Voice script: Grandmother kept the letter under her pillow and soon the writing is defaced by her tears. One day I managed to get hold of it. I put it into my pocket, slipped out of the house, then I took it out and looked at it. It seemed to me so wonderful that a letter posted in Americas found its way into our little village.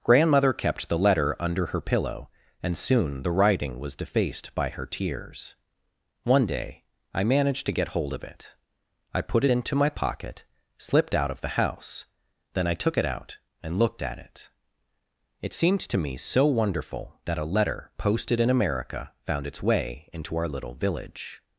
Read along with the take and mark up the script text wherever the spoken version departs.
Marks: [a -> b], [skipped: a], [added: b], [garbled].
Grandmother kept the letter under her pillow and soon the writing [is -> was] defaced by her tears. One day I managed to get hold of it. I put it into my pocket, slipped out of the house, then I took it out and looked at it. It seemed to me so wonderful that a letter posted in [Americas -> America] found its way into our little village.